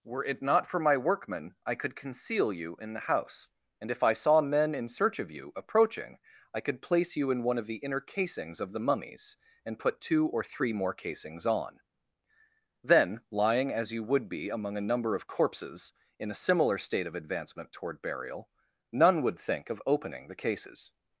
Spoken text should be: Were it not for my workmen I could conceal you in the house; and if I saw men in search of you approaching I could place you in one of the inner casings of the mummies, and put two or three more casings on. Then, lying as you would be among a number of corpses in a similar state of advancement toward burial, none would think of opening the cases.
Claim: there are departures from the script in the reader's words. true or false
false